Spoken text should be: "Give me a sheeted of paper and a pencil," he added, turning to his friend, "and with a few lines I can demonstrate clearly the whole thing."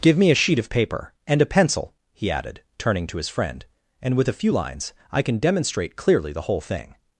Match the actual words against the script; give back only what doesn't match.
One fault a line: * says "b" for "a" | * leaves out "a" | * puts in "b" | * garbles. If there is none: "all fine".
* says "sheet" for "sheeted"